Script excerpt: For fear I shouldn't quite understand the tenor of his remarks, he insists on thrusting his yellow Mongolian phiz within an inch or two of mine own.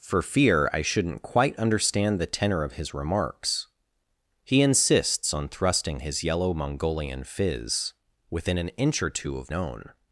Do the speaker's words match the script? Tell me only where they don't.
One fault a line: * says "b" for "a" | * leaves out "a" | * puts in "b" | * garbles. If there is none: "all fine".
* leaves out "mine"